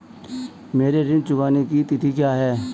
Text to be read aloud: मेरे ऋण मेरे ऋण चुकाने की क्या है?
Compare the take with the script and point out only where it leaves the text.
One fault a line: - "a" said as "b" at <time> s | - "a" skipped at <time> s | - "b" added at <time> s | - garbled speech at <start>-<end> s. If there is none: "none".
- "मेरे ऋण" skipped at 1.2 s
- "तिथि" added at 1.8 s